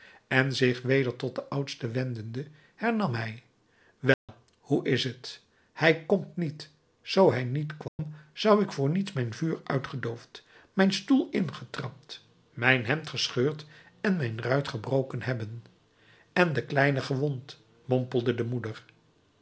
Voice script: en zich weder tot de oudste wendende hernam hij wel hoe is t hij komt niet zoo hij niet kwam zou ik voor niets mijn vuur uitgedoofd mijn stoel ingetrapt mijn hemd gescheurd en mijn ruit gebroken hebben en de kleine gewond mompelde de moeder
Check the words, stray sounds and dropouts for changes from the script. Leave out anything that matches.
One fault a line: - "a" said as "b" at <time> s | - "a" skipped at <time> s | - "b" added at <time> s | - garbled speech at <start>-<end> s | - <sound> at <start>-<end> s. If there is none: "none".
- dropout at 4.1-4.3 s
- dropout at 7.9-8.0 s